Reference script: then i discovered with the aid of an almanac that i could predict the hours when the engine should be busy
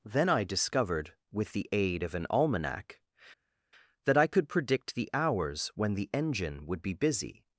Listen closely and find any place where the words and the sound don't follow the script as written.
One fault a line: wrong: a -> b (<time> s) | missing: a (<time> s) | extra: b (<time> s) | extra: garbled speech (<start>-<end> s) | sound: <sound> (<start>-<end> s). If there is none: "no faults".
wrong: should -> would (6.7 s)